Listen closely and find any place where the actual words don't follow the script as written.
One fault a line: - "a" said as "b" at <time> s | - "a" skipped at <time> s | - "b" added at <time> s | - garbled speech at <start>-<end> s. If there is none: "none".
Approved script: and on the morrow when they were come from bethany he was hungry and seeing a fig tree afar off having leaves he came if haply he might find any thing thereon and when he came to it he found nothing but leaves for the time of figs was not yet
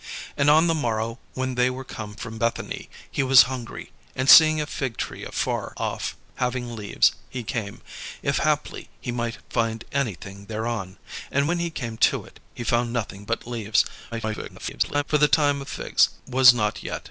- garbled speech at 14.1-15.0 s